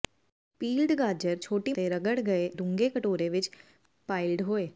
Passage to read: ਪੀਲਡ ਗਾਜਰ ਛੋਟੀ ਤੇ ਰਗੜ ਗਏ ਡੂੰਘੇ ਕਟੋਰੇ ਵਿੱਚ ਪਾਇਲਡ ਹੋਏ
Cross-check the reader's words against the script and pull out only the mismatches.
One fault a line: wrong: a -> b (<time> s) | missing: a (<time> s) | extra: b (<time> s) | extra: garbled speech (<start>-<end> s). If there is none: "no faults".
no faults